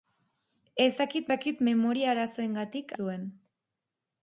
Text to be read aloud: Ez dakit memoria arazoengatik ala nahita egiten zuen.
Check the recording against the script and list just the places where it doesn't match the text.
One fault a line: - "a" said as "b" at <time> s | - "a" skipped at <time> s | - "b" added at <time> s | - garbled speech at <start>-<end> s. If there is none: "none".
- "dakit" added at 1.3 s
- "ala nahita egiten" skipped at 2.9 s